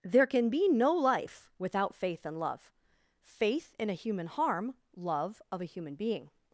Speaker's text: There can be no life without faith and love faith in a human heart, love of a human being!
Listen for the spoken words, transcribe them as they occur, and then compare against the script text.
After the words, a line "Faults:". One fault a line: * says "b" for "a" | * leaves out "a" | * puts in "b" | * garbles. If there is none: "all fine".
There can be no life without faith and love faith in a human harm, love of a human being!
Faults:
* says "harm" for "heart"